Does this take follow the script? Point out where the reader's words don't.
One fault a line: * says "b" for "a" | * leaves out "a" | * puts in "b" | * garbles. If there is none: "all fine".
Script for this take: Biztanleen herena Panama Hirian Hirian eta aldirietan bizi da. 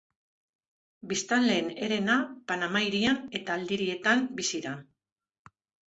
* leaves out "Hirian"